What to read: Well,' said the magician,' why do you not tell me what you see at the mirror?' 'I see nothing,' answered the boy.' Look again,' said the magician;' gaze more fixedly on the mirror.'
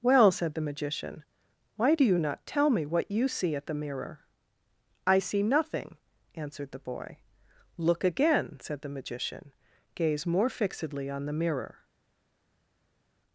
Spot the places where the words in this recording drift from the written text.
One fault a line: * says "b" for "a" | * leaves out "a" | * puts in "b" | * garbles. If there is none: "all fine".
all fine